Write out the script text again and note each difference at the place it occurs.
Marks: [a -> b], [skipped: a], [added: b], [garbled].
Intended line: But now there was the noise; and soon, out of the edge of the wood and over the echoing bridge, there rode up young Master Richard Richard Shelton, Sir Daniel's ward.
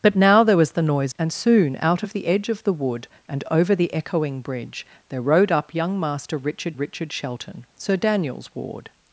But now there was the noise; and soon, out of the edge of the wood and over the echoing bridge, there rode up young Master Richard Richard Shelton, Sir Daniel's ward.